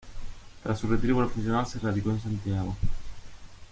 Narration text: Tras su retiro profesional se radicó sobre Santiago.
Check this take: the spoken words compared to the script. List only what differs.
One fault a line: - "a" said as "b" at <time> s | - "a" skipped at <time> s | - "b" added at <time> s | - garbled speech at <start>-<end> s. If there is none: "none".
- "sobre" said as "en" at 2.1 s